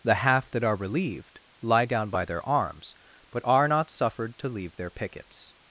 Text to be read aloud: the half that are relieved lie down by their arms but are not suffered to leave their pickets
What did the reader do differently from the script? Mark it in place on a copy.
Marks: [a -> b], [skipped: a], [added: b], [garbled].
the half that are relieved lie down by their arms but are not suffered to leave their pickets